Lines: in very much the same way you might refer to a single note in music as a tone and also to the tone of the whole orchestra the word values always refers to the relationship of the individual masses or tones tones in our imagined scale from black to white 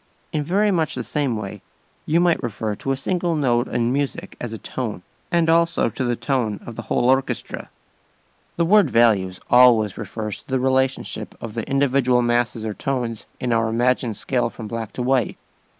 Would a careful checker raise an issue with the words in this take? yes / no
yes